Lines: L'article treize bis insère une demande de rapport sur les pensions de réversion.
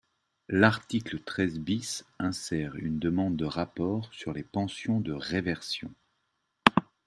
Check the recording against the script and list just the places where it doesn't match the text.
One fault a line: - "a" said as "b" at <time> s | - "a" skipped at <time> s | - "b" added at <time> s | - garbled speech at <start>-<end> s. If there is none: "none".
none